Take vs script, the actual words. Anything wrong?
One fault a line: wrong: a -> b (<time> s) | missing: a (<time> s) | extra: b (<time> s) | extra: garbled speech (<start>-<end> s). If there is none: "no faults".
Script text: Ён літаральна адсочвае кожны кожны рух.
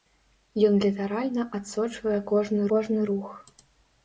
no faults